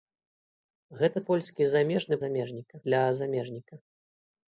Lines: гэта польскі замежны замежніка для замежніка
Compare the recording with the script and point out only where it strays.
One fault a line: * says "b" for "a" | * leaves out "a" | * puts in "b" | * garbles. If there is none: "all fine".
all fine